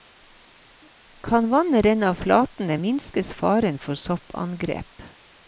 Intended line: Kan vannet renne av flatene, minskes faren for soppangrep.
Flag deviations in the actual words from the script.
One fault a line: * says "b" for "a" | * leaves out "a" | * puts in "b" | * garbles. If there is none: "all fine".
all fine